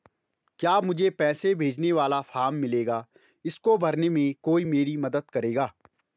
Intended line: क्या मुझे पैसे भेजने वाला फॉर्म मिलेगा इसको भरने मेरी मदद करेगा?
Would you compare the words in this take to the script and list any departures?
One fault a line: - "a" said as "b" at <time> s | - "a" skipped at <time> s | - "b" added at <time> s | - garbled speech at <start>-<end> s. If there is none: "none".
- "में कोई" added at 4.1 s